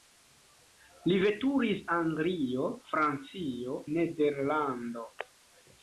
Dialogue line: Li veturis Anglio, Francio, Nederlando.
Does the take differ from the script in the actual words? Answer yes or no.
no